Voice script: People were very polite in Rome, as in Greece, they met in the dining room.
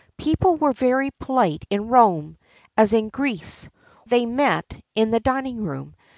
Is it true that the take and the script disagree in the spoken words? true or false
false